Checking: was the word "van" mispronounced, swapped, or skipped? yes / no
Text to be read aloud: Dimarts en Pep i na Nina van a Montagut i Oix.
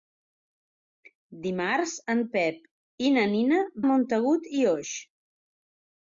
yes